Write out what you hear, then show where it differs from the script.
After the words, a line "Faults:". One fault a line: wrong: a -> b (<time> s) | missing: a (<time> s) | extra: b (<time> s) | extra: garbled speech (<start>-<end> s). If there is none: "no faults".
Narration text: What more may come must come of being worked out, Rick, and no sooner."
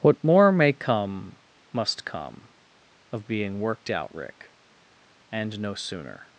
What more may come must come of being worked out, Rick, and no sooner."
Faults:
no faults